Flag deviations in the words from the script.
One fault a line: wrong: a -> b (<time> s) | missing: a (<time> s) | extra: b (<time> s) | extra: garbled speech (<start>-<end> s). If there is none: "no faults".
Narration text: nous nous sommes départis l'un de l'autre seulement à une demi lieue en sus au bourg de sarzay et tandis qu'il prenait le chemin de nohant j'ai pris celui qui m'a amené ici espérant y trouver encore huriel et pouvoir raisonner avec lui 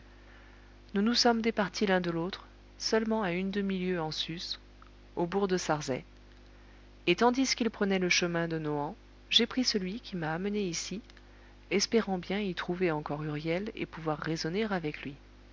extra: bien (12.2 s)